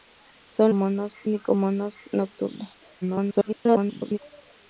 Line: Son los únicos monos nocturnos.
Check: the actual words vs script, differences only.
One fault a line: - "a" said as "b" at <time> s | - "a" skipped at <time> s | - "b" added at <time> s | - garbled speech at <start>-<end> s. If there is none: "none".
- "los" said as "monos" at 0.7 s
- garbled speech at 3.0-4.2 s